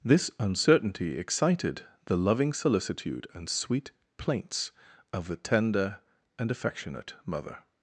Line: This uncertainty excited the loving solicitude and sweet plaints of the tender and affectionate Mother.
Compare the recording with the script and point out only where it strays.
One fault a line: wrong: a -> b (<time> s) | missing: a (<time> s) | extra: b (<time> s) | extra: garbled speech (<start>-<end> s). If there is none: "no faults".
no faults